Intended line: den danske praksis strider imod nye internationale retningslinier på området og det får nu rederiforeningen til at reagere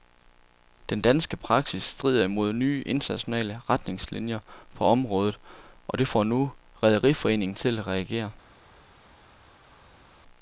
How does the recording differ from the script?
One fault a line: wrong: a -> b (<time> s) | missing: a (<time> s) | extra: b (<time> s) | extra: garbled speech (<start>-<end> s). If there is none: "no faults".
no faults